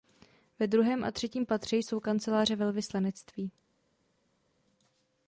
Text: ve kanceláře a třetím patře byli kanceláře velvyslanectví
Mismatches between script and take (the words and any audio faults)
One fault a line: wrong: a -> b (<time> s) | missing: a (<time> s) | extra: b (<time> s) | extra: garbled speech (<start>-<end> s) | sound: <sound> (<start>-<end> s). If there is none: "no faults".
wrong: kanceláře -> druhém (0.7 s)
wrong: byli -> jsou (1.8 s)